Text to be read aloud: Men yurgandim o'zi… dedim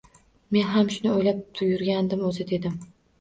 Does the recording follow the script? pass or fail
fail